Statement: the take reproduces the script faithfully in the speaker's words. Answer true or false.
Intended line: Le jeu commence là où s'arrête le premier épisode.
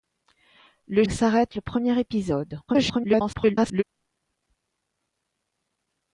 false